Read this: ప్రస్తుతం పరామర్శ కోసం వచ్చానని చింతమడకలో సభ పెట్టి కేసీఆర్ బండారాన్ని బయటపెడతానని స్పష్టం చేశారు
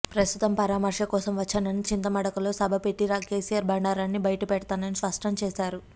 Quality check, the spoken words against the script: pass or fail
pass